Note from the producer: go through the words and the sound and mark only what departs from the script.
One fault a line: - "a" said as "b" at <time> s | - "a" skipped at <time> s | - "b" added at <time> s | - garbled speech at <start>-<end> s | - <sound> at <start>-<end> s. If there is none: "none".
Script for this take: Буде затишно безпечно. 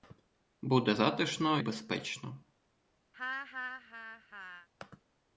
- laugh at 3.1-4.7 s